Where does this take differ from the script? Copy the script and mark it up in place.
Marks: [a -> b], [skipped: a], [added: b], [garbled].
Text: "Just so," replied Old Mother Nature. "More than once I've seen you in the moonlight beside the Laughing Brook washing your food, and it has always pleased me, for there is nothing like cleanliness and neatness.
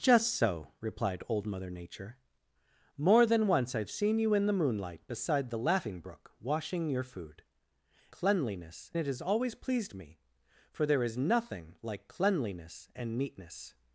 "Just so," replied Old Mother Nature. "More than once I've seen you in the moonlight beside the Laughing Brook washing your food, [and -> cleanliness] it has always pleased me, for there is nothing like cleanliness and neatness.